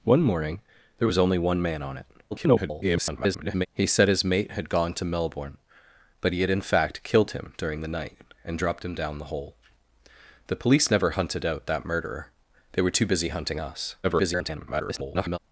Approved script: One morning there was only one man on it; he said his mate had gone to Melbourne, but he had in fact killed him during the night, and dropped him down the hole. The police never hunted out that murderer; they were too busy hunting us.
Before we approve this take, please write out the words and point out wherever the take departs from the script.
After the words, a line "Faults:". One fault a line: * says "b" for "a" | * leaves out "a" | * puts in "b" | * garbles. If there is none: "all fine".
One morning there was only one man on it; [garbled] he said his mate had gone to Melbourne, but he had in fact killed him during the night, and dropped him down the hole. The police never hunted out that murderer; they were too busy hunting us. [garbled]
Faults:
* garbles
* garbles